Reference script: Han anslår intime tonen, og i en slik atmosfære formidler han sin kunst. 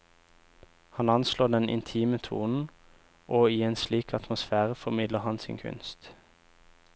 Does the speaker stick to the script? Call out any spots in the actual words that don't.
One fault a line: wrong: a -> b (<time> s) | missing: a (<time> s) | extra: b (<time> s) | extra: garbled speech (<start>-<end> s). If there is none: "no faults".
extra: den (1.5 s)